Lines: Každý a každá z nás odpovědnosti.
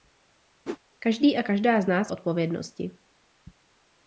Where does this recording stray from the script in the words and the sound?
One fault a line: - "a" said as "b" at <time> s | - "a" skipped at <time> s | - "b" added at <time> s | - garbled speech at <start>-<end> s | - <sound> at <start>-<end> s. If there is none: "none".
- whoosh at 0.7-0.8 s